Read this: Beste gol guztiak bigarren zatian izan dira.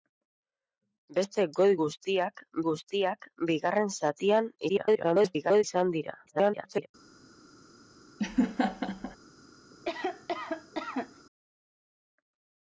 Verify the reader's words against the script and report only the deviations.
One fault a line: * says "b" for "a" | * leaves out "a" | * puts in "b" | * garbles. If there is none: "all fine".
* puts in "guztiak"
* garbles
* garbles